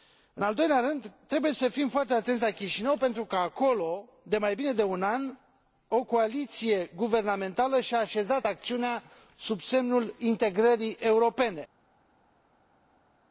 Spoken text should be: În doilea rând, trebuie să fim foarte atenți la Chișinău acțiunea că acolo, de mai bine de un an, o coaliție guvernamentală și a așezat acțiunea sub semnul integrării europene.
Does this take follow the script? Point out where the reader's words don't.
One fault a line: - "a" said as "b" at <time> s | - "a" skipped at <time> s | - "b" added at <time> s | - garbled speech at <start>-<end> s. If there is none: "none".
- "al" added at 0.4 s
- "acțiunea" said as "pentru" at 3.0 s